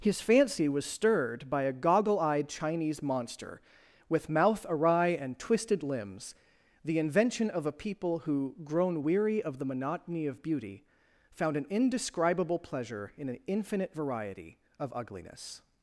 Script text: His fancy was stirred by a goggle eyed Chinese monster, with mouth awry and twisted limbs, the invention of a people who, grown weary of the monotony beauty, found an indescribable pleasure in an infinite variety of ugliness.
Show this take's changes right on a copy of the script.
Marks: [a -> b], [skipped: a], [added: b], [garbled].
His fancy was stirred by a goggle eyed Chinese monster, with mouth awry and twisted limbs, the invention of a people who, grown weary of the monotony [added: of] beauty, found an indescribable pleasure in an infinite variety of ugliness.